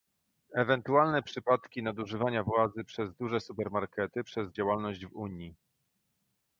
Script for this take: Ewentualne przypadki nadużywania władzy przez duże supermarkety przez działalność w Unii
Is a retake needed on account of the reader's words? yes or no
no